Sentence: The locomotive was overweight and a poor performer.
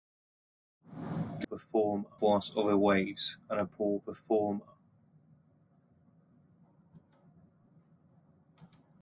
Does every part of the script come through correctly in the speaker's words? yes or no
no